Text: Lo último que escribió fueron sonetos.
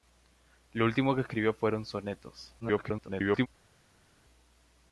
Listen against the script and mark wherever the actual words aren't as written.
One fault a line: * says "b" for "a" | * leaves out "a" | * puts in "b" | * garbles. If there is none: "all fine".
* garbles